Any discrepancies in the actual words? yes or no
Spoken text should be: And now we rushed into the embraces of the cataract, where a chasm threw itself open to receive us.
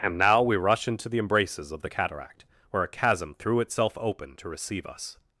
yes